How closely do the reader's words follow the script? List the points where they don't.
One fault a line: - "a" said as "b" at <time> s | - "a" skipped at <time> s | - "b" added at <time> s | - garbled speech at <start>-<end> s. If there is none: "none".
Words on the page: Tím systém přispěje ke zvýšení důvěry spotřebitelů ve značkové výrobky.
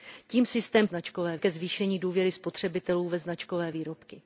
- "přispěje" said as "značkové" at 0.8 s